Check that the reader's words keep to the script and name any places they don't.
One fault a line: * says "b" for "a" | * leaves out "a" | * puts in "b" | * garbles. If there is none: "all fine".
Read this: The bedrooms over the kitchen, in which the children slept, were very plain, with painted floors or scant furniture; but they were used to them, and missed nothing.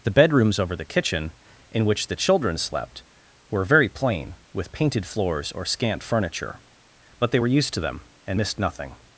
all fine